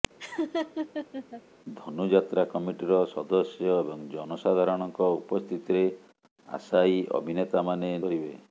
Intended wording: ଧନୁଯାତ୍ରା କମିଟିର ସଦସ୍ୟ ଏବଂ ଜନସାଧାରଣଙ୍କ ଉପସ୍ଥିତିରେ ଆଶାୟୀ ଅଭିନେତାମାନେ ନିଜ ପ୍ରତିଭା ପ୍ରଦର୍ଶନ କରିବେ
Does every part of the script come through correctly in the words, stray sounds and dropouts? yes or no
no